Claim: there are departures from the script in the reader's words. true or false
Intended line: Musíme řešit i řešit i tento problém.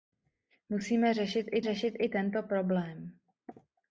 false